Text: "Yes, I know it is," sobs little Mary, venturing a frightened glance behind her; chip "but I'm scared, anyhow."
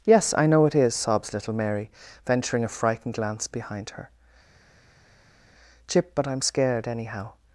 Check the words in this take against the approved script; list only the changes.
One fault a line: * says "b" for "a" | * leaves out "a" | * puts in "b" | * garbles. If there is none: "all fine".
all fine